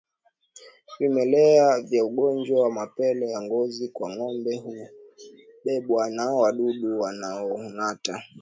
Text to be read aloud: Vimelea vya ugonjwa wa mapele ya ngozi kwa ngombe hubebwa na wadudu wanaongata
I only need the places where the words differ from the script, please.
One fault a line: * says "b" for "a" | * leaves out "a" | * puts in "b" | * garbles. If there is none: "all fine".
all fine